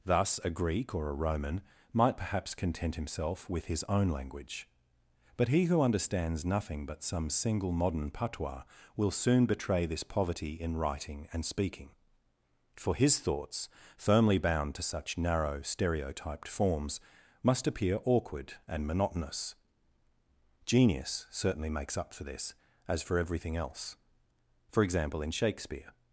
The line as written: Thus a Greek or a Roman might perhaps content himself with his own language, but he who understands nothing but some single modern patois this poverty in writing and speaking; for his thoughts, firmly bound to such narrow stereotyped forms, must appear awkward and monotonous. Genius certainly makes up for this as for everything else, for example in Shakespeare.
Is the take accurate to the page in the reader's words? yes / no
no